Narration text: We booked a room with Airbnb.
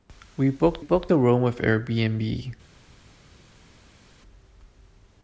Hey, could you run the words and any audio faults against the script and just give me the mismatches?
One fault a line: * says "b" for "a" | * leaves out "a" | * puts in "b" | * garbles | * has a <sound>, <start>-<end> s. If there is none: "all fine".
* puts in "booked"